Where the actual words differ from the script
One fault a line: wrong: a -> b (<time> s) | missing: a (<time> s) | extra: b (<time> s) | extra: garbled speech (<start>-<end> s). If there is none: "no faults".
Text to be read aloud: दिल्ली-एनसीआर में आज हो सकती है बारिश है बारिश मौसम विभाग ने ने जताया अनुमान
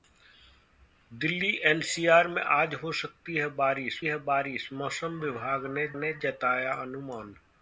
no faults